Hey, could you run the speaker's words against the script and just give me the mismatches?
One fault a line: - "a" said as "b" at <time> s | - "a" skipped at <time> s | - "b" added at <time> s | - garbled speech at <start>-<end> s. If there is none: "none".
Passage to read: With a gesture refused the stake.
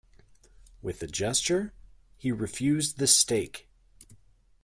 - "he" added at 2.2 s